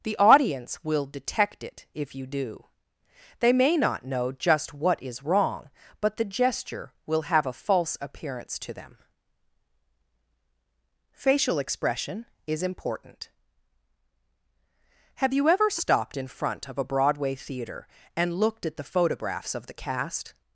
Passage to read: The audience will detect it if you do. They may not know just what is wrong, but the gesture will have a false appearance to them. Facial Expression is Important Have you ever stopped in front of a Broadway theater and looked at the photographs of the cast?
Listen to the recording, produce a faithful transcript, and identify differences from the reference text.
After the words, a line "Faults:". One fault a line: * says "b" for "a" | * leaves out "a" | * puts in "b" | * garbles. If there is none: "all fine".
The audience will detect it if you do. They may not know just what is wrong, but the gesture will have a false appearance to them. Facial Expression is Important Have you ever stopped in front of a Broadway theater and looked at the photographs of the cast?
Faults:
all fine